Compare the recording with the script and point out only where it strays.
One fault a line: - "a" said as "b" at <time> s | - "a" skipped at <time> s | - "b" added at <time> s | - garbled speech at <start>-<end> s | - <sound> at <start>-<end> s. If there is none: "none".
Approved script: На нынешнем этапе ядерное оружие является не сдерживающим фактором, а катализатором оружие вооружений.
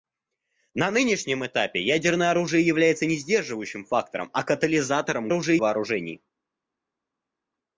none